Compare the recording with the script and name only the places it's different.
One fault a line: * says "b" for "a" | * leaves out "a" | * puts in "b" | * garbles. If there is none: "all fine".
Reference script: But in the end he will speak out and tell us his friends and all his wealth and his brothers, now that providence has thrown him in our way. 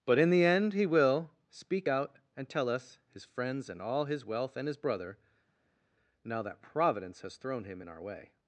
* says "brother" for "brothers"